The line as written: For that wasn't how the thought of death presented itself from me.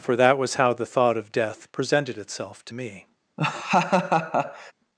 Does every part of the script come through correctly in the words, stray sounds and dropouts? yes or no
no